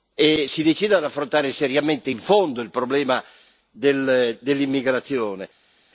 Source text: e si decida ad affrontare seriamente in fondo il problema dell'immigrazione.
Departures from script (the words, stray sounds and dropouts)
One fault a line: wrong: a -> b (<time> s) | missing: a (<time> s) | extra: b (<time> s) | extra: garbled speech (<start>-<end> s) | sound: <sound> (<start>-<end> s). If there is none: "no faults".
no faults